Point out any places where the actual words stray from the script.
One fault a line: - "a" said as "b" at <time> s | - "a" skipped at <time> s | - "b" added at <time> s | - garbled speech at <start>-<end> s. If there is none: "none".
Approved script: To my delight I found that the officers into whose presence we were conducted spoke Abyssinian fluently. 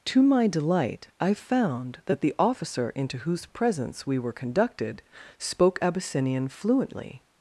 - "officers" said as "officer" at 2.4 s